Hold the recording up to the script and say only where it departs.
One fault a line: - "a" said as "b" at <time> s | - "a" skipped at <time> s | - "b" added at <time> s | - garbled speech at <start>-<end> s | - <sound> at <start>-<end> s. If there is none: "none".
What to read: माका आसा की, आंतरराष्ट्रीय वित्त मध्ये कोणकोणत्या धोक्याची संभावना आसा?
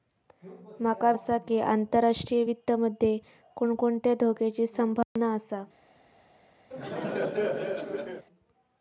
- dropout at 5.0-5.2 s
- laugh at 6.7-8.3 s